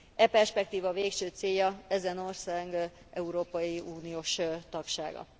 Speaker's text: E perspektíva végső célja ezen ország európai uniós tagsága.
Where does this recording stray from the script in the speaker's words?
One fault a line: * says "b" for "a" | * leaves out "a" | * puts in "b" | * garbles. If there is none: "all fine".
all fine